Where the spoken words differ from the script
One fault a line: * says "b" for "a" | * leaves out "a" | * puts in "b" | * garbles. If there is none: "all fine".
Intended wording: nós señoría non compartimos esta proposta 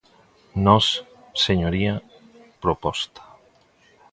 * leaves out "non compartimos esta"